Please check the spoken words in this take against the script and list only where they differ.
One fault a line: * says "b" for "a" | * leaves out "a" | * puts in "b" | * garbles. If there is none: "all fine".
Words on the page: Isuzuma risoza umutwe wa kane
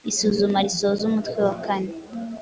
all fine